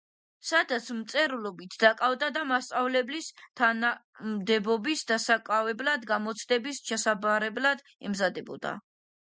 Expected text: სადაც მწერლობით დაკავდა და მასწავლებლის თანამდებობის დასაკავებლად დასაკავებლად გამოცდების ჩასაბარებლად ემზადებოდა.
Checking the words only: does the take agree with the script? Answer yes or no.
no